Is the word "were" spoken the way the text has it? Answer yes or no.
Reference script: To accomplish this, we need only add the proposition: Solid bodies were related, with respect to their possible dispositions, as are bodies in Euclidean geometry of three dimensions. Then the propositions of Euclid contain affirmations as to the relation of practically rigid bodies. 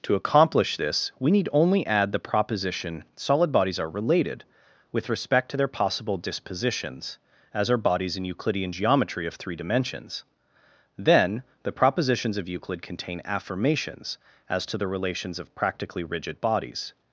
no